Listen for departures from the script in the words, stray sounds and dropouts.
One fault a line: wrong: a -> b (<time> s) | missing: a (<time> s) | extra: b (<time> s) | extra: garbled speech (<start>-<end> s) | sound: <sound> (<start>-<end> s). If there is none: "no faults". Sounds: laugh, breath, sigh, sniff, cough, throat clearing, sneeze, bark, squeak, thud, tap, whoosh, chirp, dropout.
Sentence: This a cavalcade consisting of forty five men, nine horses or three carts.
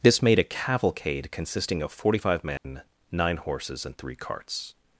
extra: made (0.2 s)
sound: dropout (2.6-2.6 s)
wrong: or -> and (3.8 s)